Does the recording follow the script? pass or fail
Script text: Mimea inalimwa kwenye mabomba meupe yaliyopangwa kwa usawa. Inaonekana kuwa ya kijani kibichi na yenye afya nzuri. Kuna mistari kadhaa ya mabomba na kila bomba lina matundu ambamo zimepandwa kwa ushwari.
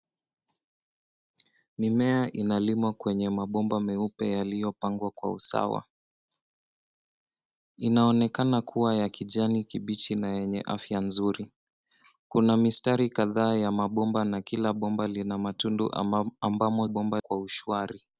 fail